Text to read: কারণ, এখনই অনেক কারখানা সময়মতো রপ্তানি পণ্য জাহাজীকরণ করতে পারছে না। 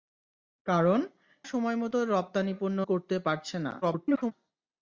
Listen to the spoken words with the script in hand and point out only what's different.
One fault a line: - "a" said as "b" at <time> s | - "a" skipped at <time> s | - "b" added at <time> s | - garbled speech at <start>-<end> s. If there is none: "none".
- "এখনই অনেক কারখানা" skipped at 1.0 s
- "জাহাজীকরণ" skipped at 2.8 s
- garbled speech at 3.8-4.3 s